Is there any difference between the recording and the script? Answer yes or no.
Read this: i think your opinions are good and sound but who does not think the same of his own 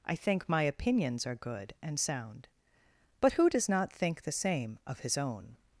yes